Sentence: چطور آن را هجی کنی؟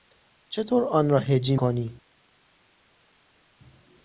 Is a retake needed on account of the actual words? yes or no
no